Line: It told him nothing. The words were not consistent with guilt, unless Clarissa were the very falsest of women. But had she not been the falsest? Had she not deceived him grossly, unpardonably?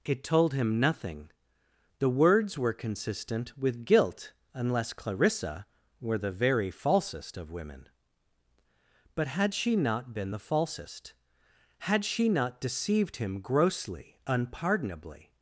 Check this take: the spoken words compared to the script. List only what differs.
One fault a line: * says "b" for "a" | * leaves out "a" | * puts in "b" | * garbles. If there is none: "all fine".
* leaves out "not"